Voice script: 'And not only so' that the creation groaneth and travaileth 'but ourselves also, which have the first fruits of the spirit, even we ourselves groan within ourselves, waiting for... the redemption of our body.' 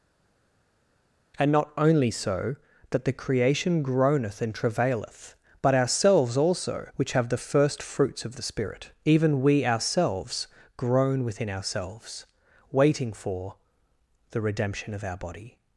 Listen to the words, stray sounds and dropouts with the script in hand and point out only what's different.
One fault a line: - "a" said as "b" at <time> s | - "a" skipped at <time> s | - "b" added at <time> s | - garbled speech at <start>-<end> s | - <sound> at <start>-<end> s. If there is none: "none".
none